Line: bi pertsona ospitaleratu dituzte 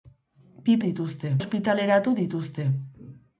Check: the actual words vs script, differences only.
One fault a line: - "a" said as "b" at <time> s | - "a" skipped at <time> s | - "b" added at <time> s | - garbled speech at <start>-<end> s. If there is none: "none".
- "pertsona" said as "dituzte" at 0.9 s